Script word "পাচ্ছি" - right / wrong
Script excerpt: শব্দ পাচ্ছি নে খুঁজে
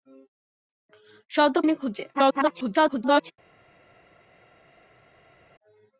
wrong